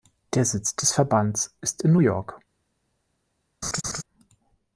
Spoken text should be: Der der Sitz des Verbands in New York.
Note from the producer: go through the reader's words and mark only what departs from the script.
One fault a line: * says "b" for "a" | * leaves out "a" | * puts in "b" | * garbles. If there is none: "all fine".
* leaves out "der"
* puts in "ist"